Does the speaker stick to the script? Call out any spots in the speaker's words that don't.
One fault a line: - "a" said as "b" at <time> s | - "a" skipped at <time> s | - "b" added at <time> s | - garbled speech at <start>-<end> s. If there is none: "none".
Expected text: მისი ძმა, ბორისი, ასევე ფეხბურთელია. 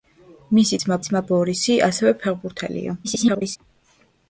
- "ძმა" added at 1.1 s
- garbled speech at 3.0-3.6 s